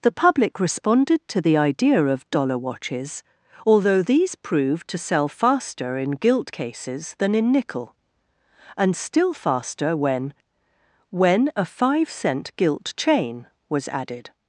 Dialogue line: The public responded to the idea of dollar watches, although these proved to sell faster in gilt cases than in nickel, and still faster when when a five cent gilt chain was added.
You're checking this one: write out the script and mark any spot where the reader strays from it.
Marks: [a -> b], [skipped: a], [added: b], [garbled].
The public responded to the idea of dollar watches, although these proved to sell faster in gilt cases than in nickel, and still faster when when a five cent gilt chain was added.